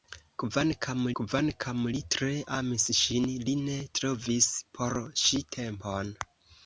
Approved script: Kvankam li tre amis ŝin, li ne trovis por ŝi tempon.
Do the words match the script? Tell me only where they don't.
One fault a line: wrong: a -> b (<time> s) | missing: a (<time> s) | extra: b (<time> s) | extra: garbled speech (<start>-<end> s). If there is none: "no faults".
extra: kvankam (1.2 s)